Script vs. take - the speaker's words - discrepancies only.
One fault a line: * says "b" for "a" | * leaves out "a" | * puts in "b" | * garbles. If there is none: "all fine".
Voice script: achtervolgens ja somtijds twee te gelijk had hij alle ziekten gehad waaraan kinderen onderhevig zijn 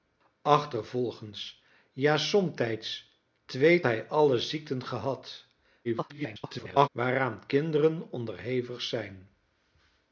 * leaves out "te gelijk had"
* garbles